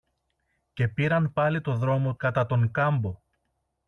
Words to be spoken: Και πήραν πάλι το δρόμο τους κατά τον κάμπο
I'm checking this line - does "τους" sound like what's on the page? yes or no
no